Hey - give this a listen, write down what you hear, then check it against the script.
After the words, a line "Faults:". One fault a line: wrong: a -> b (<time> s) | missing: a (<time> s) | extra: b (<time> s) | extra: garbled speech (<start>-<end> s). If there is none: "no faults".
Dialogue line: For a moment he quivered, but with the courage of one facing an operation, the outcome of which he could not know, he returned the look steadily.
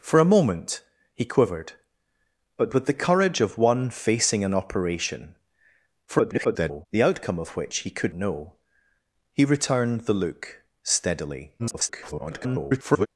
For a moment he quivered, but with the courage of one facing an operation, [garbled] the outcome of which he could know, he returned the look steadily. [garbled]
Faults:
extra: garbled speech (6.1-6.9 s)
missing: not (8.1 s)
extra: garbled speech (11.6-13.1 s)